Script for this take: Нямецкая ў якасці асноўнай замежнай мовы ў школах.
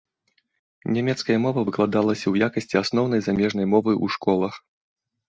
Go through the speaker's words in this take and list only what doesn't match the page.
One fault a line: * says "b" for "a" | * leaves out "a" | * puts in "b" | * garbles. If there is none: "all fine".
* puts in "мова выкладалася"